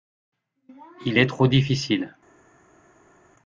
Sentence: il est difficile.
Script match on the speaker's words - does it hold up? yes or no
no